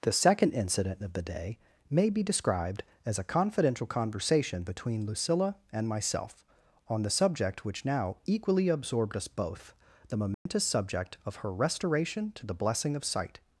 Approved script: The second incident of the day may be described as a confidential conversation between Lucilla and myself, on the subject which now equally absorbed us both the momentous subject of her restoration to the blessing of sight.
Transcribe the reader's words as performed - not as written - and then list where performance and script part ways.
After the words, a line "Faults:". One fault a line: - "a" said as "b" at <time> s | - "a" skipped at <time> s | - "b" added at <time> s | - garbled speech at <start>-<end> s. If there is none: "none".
The second incident of the day may be described as a confidential conversation between Lucilla and myself, on the subject which now equally absorbed us both the momentous subject of her restoration to the blessing of sight.
Faults:
none